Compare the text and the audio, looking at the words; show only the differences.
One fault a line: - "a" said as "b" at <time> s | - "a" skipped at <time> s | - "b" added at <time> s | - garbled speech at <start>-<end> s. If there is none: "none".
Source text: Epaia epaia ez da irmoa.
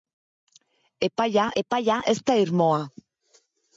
none